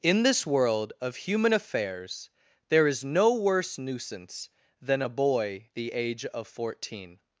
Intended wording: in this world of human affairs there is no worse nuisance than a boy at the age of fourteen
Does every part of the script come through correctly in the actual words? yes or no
no